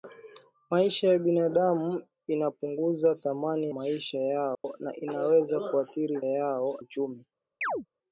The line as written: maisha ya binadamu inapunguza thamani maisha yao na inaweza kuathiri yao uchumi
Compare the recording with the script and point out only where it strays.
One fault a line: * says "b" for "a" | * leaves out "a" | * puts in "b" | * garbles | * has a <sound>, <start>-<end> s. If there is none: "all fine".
* has a dropout, 4.5-4.6 s
* has a chirp, 7.6-7.9 s